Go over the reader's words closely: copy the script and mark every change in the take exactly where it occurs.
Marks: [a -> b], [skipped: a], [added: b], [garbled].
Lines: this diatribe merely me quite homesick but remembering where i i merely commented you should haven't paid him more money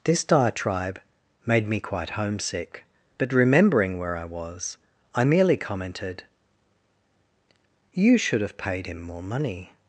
this diatribe [merely -> made] me quite homesick but remembering where i [added: was] i merely commented you should [haven't -> have] paid him more money